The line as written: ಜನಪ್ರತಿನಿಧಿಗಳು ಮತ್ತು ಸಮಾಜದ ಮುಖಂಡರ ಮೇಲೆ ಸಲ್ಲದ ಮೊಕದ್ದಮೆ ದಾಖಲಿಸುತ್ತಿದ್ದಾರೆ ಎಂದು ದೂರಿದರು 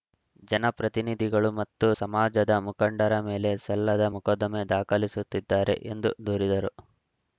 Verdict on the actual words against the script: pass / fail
pass